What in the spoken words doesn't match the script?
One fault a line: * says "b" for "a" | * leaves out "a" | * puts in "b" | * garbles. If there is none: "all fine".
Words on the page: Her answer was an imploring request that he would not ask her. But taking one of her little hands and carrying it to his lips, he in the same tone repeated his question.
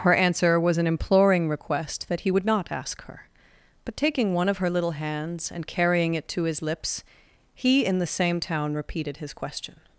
* says "town" for "tone"